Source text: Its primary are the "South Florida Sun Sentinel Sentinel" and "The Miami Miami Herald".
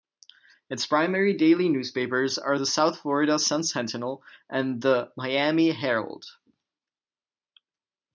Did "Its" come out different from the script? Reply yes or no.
no